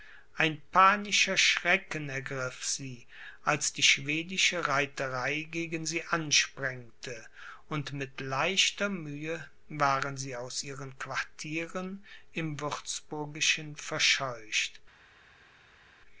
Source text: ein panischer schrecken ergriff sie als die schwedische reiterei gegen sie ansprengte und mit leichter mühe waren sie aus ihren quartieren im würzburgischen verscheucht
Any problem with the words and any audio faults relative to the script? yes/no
no